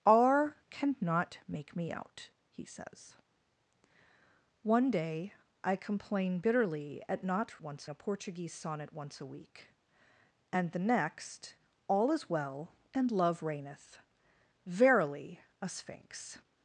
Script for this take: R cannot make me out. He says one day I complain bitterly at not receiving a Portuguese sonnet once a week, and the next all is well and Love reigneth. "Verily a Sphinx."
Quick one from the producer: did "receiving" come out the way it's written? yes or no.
no